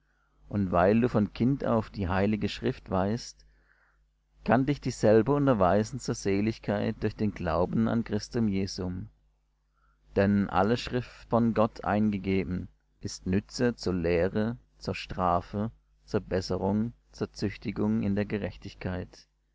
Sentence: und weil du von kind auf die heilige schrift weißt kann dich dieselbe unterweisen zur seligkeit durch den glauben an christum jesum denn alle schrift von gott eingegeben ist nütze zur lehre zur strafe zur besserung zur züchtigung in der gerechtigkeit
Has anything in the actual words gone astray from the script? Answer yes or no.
no